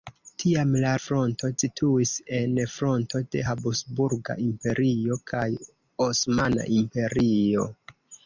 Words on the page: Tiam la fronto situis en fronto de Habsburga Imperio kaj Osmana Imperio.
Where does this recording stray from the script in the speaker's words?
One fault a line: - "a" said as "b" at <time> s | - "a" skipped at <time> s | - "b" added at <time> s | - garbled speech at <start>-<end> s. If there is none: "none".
none